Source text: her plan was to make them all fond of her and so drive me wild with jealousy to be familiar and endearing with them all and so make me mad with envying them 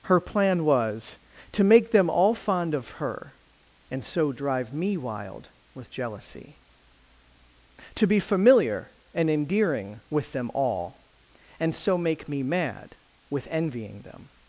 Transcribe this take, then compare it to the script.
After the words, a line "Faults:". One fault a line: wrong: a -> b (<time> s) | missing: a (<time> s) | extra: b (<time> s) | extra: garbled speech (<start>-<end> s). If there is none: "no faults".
her plan was to make them all fond of her and so drive me wild with jealousy to be familiar and endearing with them all and so make me mad with envying them
Faults:
no faults